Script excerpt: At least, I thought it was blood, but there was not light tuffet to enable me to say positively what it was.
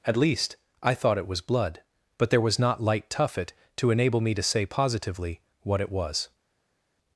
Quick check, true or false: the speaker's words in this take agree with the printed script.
true